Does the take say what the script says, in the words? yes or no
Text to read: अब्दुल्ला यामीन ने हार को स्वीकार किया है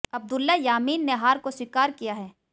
yes